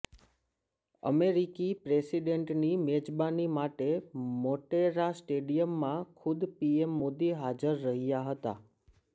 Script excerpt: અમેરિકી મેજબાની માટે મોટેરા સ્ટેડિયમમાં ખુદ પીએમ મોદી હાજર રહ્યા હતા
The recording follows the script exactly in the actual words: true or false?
false